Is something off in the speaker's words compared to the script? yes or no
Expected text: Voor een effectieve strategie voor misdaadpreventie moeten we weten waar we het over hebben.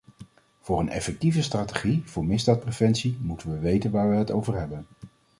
no